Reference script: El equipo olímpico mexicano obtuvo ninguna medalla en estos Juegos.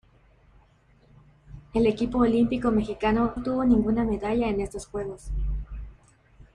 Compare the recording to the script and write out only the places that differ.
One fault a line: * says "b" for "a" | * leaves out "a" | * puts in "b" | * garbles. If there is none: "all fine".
all fine